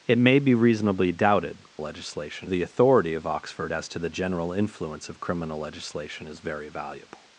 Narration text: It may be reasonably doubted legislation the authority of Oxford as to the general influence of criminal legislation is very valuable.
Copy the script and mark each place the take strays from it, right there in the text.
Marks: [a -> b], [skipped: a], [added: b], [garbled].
It may be reasonably doubted legislation the authority of Oxford as to the general influence of criminal legislation is very valuable.